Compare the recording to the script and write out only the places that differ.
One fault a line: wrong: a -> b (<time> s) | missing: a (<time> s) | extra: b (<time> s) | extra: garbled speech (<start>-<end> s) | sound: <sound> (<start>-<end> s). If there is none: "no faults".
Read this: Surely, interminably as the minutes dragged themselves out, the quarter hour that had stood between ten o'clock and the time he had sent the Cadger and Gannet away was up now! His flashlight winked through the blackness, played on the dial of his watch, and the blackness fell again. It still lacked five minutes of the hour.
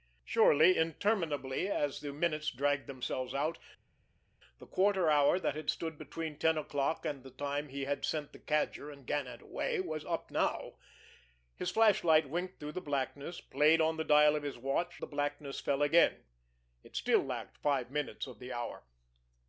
missing: and (15.0 s)